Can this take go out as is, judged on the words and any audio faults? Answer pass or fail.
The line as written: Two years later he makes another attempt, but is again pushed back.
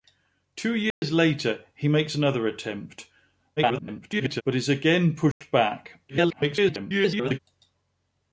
fail